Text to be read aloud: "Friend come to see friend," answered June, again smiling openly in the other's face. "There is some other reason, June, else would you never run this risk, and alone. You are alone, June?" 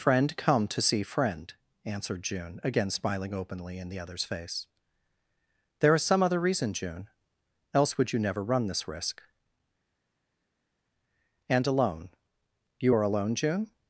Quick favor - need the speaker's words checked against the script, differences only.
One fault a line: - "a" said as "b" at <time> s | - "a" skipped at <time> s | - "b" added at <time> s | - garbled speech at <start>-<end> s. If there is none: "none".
none